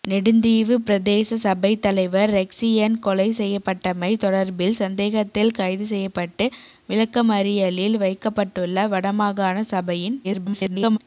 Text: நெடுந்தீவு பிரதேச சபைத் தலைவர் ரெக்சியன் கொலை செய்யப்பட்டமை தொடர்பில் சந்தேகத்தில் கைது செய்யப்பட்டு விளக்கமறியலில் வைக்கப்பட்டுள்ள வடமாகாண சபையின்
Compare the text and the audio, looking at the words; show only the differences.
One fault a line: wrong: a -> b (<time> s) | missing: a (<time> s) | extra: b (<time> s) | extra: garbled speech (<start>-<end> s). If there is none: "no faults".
extra: garbled speech (10.2-11.0 s)